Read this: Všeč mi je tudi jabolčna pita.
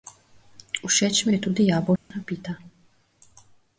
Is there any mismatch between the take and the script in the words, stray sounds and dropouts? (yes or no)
yes